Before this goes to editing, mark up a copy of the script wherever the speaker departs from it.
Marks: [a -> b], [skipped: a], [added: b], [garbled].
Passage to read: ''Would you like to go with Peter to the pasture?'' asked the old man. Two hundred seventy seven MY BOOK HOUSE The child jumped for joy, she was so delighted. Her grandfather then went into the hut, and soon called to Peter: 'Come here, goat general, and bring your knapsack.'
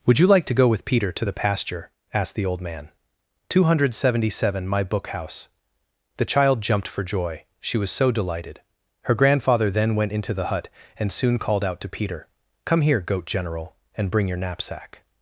''Would you like to go with Peter to the pasture?'' asked the old man. Two hundred seventy seven MY BOOK HOUSE The child jumped for joy, she was so delighted. Her grandfather then went into the hut, and soon called [added: out] to Peter: 'Come here, goat general, and bring your knapsack.'